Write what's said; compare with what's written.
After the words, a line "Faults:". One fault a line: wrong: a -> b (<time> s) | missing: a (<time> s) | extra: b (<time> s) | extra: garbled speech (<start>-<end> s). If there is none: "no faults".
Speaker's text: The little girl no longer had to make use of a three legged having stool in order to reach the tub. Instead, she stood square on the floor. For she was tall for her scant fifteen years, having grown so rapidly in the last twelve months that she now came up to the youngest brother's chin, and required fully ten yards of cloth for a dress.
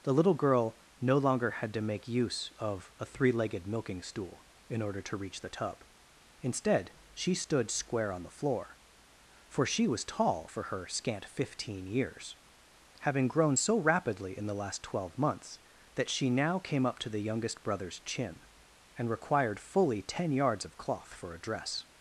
The little girl no longer had to make use of a three legged milking stool in order to reach the tub. Instead, she stood square on the floor. For she was tall for her scant fifteen years, having grown so rapidly in the last twelve months that she now came up to the youngest brother's chin, and required fully ten yards of cloth for a dress.
Faults:
wrong: having -> milking (3.7 s)